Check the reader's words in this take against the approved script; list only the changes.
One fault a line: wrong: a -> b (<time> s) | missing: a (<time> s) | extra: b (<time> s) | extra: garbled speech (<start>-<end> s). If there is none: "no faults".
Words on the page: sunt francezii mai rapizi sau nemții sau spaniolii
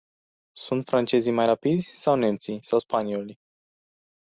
no faults